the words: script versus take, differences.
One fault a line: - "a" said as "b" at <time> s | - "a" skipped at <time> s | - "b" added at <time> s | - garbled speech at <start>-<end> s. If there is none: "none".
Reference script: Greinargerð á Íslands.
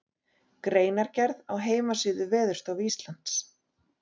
- "heimasíðu Veðurstofu" added at 1.7 s